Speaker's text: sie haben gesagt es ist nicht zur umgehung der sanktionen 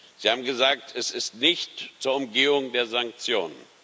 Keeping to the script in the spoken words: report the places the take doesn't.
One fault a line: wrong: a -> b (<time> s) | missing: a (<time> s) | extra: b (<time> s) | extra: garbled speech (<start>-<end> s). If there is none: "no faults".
no faults